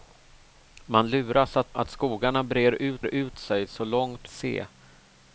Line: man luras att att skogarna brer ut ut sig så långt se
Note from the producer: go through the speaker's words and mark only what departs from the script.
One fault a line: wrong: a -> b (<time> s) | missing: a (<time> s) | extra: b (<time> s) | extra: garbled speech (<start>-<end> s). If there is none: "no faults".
no faults